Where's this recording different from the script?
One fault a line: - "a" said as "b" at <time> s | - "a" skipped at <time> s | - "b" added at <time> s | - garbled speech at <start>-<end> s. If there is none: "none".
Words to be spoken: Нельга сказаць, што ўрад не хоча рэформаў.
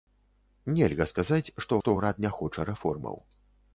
- "што" added at 1.8 s